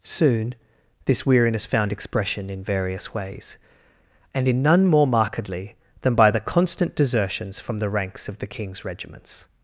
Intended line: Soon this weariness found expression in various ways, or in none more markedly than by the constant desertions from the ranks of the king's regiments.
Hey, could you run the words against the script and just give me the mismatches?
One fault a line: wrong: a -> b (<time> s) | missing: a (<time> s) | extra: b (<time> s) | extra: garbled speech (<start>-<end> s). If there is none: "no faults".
wrong: or -> and (4.3 s)